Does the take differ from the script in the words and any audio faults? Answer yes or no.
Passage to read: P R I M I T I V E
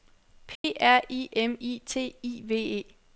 yes